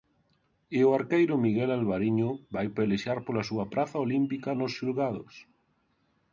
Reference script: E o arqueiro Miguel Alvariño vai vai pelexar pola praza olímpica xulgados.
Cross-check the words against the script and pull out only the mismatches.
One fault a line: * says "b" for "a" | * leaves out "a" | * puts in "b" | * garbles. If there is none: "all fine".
* leaves out "vai"
* puts in "súa"
* puts in "nos"